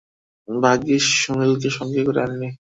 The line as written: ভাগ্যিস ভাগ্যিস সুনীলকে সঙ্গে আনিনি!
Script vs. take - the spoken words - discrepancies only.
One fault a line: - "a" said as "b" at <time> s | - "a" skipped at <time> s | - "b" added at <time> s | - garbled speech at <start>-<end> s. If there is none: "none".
- "ভাগ্যিস" skipped at 1.0 s
- "করে" added at 2.1 s